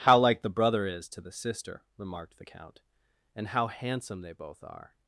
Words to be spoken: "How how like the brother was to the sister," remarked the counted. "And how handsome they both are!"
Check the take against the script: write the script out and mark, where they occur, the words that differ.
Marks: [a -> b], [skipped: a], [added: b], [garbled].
"How [skipped: how] like the brother [was -> is] to the sister," remarked the [counted. -> count] "And how handsome they both are!"